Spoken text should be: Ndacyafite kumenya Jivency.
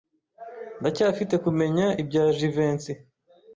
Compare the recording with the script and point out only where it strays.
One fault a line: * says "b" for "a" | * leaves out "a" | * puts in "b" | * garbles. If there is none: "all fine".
* puts in "ibya"